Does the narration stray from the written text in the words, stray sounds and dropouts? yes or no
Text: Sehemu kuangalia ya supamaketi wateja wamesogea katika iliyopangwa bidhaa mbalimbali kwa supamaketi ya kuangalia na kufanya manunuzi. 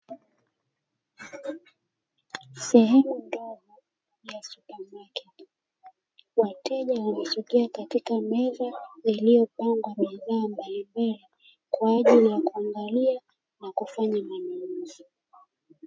yes